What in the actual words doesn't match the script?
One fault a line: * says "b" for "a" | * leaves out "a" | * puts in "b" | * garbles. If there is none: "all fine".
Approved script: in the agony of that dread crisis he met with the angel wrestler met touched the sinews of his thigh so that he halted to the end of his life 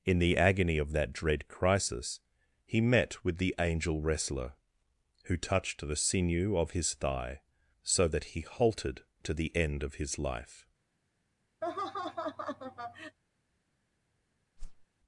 * says "who" for "met"
* says "sinew" for "sinews"